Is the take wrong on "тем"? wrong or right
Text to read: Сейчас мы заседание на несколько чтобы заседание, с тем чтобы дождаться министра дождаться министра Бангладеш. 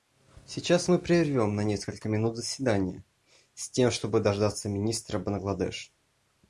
right